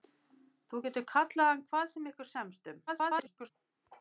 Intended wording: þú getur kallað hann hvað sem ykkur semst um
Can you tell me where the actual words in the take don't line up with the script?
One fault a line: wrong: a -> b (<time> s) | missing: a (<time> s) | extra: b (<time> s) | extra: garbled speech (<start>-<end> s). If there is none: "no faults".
extra: garbled speech (2.9-3.5 s)